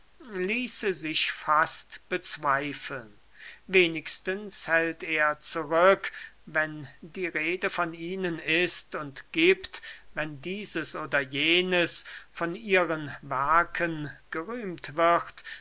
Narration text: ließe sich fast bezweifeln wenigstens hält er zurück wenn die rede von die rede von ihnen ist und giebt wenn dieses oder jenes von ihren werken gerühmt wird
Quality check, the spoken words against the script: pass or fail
fail